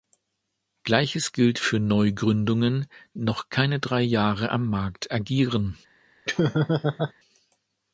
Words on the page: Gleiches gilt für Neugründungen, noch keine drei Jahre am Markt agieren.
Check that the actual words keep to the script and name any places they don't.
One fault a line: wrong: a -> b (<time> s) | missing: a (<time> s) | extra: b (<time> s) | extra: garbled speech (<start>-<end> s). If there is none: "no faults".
no faults